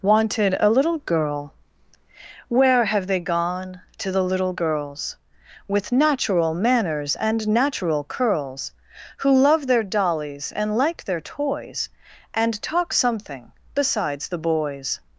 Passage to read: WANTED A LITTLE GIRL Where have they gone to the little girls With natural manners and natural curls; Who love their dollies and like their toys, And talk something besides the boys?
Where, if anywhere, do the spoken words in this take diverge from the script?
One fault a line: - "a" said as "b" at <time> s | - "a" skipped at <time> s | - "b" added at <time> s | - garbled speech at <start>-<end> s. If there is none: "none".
none